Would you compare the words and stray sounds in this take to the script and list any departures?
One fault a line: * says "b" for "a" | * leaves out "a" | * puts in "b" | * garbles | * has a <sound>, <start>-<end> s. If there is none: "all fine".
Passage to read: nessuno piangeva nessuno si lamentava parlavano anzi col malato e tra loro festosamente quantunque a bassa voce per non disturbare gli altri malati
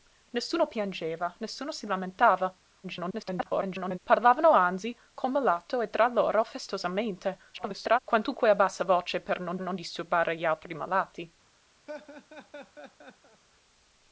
* garbles
* garbles
* puts in "non"
* has a laugh, 11.9-13.4 s